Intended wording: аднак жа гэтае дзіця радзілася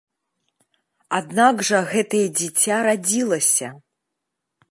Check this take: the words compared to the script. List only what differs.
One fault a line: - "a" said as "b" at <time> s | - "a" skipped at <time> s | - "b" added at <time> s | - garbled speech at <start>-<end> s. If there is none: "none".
none